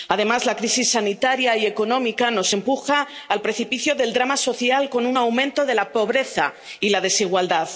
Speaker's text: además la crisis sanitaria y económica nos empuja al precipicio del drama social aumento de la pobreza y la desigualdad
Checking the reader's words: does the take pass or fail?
fail